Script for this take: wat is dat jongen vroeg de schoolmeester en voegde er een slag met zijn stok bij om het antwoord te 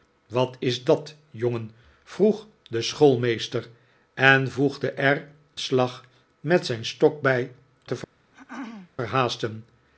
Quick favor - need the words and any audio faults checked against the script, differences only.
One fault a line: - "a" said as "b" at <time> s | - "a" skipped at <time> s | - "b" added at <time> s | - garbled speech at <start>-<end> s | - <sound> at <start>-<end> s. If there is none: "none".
- "een" skipped at 5.3 s
- "om het antwoord" skipped at 7.5 s
- throat clearing at 8.3-8.9 s